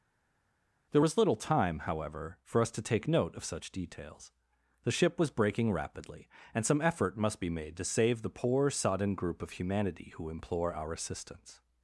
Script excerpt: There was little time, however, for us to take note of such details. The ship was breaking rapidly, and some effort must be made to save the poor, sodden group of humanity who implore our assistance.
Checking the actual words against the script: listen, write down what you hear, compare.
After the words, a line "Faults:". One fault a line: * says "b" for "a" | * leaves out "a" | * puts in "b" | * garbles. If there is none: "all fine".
There was little time, however, for us to take note of such details. The ship was breaking rapidly, and some effort must be made to save the poor, sodden group of humanity who implore our assistance.
Faults:
all fine